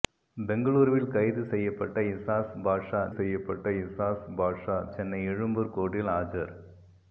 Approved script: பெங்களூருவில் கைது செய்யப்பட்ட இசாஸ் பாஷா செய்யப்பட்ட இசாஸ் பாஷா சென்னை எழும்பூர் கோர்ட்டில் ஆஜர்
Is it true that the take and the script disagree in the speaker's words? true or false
false